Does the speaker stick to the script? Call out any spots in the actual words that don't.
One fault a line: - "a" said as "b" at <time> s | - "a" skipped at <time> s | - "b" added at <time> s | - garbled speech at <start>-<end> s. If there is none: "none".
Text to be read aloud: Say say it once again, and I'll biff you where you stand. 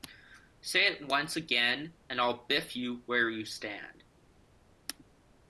- "say" skipped at 0.9 s